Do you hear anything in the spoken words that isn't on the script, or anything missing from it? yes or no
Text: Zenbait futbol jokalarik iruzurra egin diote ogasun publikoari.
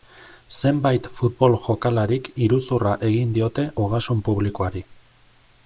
no